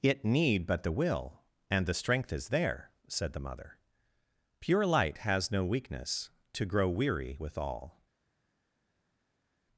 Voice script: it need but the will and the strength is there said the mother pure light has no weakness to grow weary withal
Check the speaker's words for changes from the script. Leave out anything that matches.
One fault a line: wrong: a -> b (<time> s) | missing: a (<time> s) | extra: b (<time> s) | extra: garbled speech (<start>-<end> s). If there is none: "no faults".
no faults